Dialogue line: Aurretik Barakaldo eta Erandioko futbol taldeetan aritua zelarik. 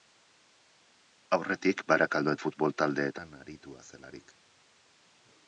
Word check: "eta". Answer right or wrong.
wrong